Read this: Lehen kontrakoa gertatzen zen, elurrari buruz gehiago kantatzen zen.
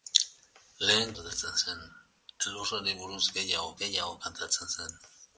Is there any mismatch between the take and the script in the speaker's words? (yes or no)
yes